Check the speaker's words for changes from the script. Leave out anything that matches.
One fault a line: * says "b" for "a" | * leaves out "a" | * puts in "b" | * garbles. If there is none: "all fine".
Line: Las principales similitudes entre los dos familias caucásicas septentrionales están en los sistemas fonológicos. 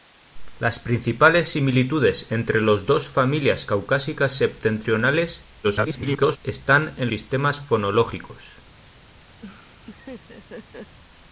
* garbles
* leaves out "los"